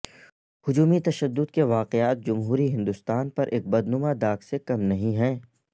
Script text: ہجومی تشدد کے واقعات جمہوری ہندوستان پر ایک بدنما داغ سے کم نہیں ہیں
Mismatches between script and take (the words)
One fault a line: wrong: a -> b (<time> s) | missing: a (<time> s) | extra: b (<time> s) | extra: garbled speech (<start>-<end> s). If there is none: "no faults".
no faults